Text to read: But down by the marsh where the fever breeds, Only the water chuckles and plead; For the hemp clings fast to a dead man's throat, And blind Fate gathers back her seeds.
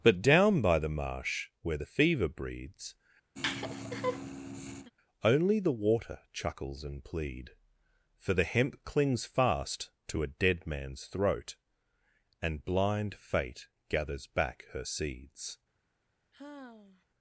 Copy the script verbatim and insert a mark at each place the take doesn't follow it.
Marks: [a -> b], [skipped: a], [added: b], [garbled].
But down by the marsh where the fever breeds, Only the water chuckles and plead; For the hemp clings fast to a dead man's throat, And blind Fate gathers back her seeds.